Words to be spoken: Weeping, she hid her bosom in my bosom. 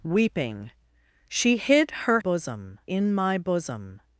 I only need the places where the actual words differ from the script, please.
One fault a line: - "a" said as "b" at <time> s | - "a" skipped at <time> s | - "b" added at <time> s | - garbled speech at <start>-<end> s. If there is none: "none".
none